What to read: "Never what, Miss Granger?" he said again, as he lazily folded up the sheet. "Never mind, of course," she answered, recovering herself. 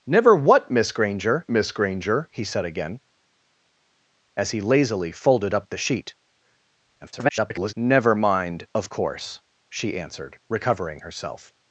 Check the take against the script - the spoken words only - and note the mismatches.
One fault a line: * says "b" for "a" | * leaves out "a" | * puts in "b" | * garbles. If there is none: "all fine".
* puts in "Miss Granger"
* garbles